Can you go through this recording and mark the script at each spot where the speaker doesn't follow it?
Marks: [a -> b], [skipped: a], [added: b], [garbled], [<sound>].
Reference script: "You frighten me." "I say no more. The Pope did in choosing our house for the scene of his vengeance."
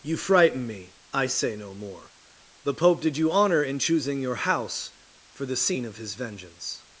"You frighten me." "I say no more. The Pope did [added: you honor] in choosing [our -> your] house for the scene of his vengeance."